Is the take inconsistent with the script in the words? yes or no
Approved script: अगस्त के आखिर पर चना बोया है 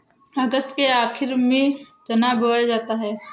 yes